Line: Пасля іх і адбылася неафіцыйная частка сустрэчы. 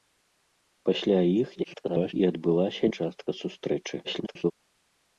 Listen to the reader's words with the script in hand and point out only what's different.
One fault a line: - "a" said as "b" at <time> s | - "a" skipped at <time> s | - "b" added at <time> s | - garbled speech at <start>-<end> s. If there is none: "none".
- garbled speech at 1.5-2.1 s
- "неафіцыйная" skipped at 2.9 s
- garbled speech at 4.0-4.5 s